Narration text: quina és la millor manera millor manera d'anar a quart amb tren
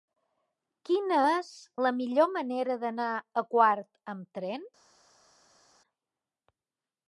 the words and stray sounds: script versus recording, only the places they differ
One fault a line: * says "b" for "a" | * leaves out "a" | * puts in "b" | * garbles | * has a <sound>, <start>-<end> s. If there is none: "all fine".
* leaves out "millor manera"